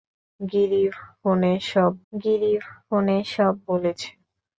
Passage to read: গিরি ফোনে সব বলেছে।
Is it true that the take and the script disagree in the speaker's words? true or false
true